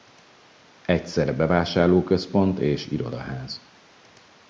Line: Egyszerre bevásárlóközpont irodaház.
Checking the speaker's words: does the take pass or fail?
fail